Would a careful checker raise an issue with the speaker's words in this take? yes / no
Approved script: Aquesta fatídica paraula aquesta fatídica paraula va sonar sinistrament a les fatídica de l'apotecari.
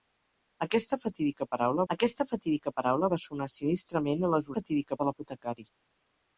no